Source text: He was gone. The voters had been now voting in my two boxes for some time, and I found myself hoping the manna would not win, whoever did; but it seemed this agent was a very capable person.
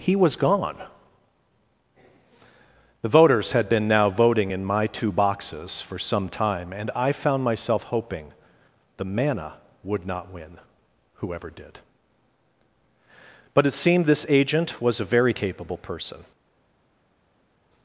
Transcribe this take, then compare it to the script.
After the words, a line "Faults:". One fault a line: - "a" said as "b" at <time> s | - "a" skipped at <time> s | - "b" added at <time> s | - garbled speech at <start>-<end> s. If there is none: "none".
He was gone. The voters had been now voting in my two boxes for some time, and I found myself hoping the manna would not win, whoever did; but it seemed this agent was a very capable person.
Faults:
none